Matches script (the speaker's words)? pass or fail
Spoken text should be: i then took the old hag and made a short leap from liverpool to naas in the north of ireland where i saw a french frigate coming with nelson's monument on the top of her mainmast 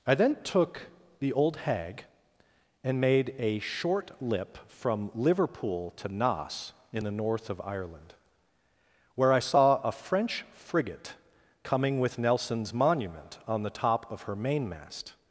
fail